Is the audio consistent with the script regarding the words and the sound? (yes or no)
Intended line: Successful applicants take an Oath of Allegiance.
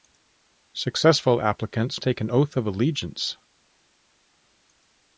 yes